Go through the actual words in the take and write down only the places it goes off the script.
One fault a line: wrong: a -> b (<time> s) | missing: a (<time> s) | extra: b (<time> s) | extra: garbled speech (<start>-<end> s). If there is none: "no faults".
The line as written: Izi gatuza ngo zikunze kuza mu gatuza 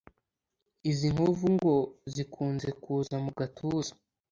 wrong: gatuza -> nkovu (1.1 s)